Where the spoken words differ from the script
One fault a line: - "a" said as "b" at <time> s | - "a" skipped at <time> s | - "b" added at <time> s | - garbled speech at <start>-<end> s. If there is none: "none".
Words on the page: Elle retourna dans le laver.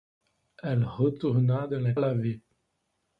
none